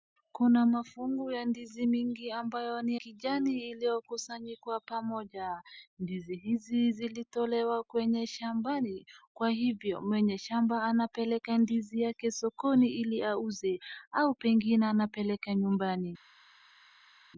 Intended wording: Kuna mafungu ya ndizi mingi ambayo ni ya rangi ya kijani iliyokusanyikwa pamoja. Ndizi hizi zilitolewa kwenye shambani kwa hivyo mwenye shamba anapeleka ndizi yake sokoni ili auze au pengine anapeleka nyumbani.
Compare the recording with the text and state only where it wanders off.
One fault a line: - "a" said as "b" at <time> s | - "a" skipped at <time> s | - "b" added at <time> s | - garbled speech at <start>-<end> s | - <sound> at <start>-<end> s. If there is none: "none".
- "ya rangi ya" skipped at 2.9 s